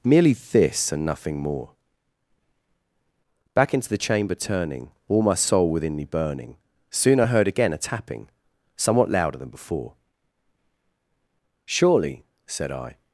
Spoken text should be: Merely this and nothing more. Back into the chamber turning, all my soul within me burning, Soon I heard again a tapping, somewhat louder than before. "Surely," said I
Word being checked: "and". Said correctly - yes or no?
yes